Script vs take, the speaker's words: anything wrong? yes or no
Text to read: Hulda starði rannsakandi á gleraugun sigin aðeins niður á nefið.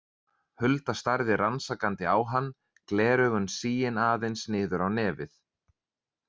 yes